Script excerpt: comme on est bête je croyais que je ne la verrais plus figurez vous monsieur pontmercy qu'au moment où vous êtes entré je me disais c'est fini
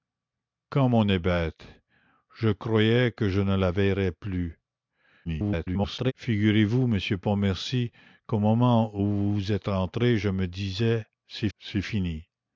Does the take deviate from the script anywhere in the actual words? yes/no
yes